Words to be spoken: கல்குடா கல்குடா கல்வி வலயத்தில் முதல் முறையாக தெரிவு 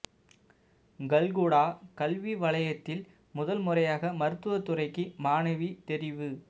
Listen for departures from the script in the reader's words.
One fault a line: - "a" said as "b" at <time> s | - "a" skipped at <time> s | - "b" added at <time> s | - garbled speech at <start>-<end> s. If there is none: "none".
- "கல்குடா" skipped at 1.6 s
- "மருத்துவ துறைக்கு மாணவி" added at 4.2 s